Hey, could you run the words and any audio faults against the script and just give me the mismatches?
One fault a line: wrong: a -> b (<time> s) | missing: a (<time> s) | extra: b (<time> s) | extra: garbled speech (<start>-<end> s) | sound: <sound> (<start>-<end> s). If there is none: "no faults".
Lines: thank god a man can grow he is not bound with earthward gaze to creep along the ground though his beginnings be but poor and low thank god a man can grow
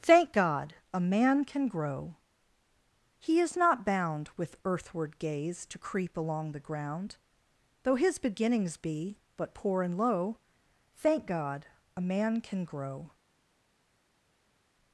no faults